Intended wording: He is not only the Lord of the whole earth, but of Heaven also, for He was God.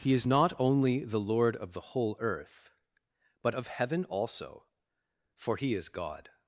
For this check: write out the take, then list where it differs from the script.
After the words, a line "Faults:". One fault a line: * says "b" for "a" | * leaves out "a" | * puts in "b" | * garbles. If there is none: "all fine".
He is not only the Lord of the whole earth, but of Heaven also, for He is God.
Faults:
* says "is" for "was"